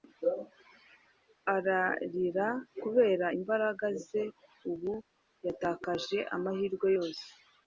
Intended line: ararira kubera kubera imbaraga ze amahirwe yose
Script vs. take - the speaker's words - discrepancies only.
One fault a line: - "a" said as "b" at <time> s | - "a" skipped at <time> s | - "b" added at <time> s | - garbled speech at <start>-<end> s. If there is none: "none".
- "kubera" skipped at 3.3 s
- "ubu yatakaje" added at 4.7 s